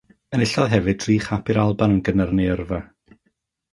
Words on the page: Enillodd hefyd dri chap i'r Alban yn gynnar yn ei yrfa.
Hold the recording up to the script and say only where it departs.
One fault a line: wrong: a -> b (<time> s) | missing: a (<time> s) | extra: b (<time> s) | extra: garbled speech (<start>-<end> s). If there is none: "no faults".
no faults